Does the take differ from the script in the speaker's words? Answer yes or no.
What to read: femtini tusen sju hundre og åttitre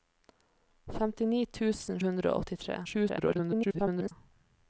yes